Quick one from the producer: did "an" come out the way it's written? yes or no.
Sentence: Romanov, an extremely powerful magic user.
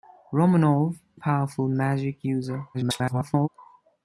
no